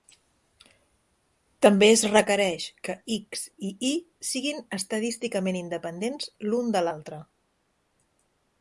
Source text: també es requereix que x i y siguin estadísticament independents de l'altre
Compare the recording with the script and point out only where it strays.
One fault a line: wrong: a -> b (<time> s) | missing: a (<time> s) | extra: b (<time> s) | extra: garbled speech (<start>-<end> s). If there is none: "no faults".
extra: l'un (6.5 s)